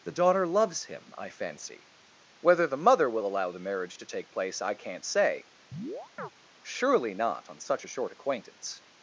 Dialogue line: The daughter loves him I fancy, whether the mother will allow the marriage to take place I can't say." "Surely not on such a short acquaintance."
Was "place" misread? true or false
false